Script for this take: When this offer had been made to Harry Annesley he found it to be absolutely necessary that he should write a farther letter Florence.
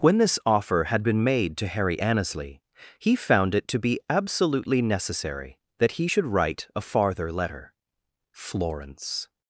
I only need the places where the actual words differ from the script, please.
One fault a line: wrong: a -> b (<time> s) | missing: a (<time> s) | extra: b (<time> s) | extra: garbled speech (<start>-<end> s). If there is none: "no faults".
no faults